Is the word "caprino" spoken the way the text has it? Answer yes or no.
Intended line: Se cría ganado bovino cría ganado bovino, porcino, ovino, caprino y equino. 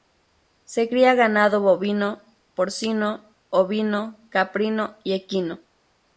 yes